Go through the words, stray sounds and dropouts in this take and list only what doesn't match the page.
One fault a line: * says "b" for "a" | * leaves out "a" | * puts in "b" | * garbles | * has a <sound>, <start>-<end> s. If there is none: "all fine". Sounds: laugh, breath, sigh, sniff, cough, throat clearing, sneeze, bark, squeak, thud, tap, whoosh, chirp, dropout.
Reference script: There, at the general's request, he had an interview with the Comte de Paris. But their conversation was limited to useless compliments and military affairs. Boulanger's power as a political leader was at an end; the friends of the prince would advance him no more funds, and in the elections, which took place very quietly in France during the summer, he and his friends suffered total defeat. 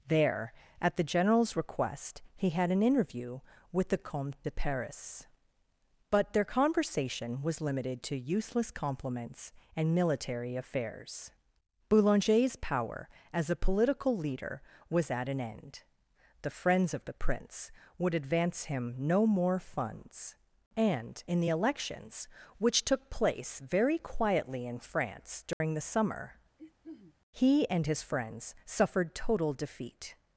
* has a dropout, 25.5-25.6 s
* has a throat clearing, 26.6-27.2 s